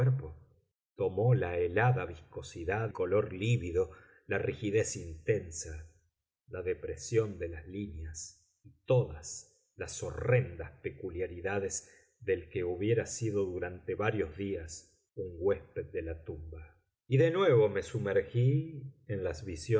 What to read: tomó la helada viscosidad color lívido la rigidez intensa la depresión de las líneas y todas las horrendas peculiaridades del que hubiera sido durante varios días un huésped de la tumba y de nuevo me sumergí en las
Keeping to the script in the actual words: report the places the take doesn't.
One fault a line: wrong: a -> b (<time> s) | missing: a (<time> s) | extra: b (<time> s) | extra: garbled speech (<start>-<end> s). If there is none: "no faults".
no faults